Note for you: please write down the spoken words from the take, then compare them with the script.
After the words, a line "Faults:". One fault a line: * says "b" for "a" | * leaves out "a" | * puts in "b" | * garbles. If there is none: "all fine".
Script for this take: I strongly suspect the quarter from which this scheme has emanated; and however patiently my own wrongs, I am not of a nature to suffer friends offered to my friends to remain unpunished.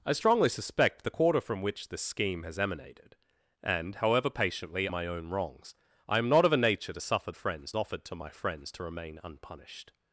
I strongly suspect the quarter from which this scheme has emanated; and however patiently my own wrongs, I am not of a nature to suffer friends offered to my friends to remain unpunished.
Faults:
all fine